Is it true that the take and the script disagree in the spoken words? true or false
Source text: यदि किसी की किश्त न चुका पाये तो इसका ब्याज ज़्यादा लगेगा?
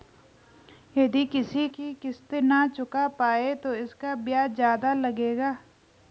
false